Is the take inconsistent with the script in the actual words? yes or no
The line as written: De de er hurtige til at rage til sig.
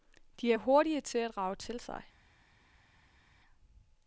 yes